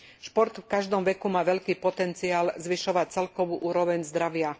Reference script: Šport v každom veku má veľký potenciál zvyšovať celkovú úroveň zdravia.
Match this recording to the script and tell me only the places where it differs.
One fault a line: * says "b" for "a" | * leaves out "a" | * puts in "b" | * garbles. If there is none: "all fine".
all fine